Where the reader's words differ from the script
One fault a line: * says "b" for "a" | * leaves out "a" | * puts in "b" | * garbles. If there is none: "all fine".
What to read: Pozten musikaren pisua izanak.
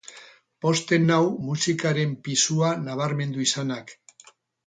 * puts in "nau"
* puts in "nabarmendu"